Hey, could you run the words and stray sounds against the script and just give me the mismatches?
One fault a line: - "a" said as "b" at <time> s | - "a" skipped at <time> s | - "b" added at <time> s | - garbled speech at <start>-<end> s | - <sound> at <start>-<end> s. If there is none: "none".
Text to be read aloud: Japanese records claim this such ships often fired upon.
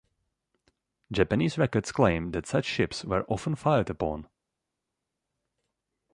- "this" said as "that" at 2.3 s
- "were" added at 3.0 s